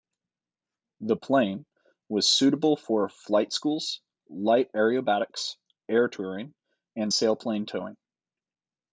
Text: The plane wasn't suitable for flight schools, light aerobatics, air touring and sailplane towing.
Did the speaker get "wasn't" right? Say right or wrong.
wrong